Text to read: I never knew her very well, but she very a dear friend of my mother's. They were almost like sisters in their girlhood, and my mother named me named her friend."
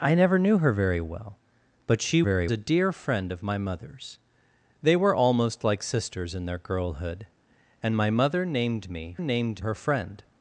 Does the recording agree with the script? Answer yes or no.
yes